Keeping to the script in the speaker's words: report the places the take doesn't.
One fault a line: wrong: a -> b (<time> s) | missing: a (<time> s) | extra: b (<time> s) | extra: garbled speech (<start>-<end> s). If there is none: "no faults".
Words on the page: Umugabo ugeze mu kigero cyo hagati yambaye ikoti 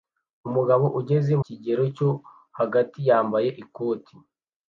missing: mu (1.3 s)